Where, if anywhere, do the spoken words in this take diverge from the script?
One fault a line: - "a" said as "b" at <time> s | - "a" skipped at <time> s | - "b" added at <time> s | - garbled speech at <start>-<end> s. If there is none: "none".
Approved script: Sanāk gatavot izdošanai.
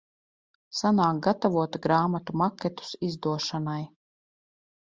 - "grāmatu maketus" added at 1.9 s